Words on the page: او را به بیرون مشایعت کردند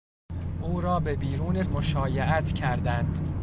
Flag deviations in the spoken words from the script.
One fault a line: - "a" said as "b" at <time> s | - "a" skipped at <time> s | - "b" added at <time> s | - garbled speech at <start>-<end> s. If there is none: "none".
none